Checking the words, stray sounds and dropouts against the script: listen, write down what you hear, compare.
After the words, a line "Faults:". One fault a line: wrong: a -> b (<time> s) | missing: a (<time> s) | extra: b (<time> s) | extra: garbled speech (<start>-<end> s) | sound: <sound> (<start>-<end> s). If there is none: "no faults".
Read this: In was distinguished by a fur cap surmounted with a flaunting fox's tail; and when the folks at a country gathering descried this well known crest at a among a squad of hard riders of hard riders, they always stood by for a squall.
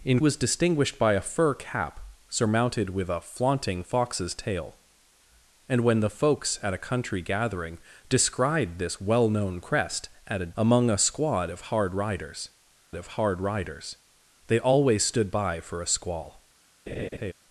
In was distinguished by a fur cap surmounted with a flaunting fox's tail; and when the folks at a country gathering descried this well known crest at a among a squad of hard riders of hard riders, they always stood by for a squall.
Faults:
sound: laugh (16.9-17.3 s)